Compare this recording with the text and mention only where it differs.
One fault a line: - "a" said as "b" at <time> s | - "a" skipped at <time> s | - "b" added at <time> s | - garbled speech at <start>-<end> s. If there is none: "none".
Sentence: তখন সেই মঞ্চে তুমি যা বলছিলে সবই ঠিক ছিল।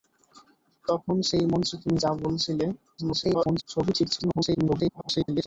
- garbled speech at 3.0-3.6 s
- garbled speech at 4.2-5.5 s